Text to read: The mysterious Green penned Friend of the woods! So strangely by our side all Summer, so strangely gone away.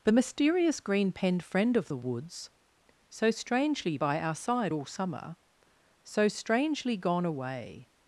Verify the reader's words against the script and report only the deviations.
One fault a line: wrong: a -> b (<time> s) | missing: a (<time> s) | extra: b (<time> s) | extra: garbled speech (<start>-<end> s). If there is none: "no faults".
no faults